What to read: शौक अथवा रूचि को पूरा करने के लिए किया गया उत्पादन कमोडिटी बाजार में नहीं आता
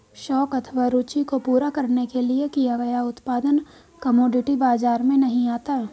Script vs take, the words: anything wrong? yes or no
no